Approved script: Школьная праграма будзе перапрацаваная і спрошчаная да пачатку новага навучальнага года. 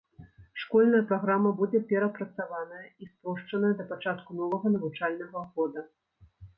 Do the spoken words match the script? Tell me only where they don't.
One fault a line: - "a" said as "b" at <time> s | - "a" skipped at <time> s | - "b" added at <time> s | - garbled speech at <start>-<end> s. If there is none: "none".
none